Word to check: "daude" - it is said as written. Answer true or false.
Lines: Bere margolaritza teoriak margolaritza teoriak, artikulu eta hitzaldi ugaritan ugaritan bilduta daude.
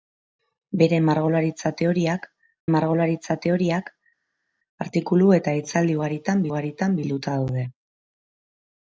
true